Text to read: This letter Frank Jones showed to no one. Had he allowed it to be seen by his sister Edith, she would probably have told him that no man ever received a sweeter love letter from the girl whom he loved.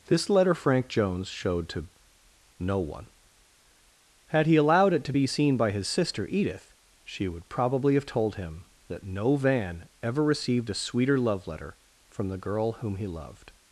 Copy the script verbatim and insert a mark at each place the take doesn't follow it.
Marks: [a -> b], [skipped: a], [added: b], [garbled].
This letter Frank Jones showed to no one. Had he allowed it to be seen by his sister Edith, she would probably have told him that no [man -> van] ever received a sweeter love letter from the girl whom he loved.